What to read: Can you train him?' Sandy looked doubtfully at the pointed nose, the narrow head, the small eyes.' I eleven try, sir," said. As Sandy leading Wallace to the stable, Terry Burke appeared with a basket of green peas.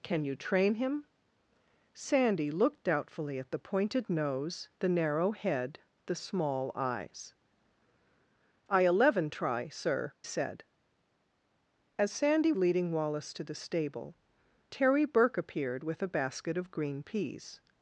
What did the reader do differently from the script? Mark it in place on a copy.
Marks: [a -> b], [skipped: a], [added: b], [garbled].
Can you train him?' Sandy looked doubtfully at the pointed nose, the narrow head, the small eyes.' I eleven try, sir," said. As Sandy leading Wallace to the stable, Terry Burke appeared with a basket of green peas.